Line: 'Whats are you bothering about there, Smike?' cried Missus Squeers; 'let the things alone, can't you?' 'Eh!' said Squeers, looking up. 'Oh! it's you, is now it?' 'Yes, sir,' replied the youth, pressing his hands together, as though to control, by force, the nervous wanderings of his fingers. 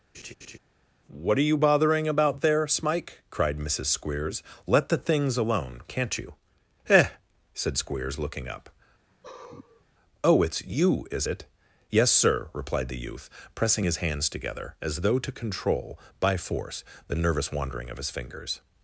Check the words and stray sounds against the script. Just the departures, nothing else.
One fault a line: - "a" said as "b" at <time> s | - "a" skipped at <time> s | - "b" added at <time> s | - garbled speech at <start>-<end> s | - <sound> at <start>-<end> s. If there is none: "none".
- laugh at 0.1-0.6 s
- "Whats" said as "What" at 1.1 s
- sigh at 9.1-9.9 s
- "now" skipped at 11.3 s
- "wanderings" said as "wandering" at 17.5 s